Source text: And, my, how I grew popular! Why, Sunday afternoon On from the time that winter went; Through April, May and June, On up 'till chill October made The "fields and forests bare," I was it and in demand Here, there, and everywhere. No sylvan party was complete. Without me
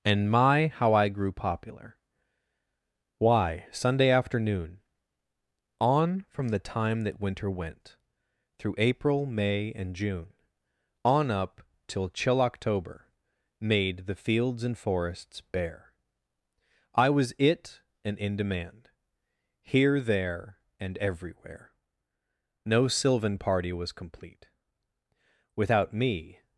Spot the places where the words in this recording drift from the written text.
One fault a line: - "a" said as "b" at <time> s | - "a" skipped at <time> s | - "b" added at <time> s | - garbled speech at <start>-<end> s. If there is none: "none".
none